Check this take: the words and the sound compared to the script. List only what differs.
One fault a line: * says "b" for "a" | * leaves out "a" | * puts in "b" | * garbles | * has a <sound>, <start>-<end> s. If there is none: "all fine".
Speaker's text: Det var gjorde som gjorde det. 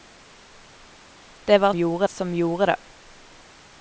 all fine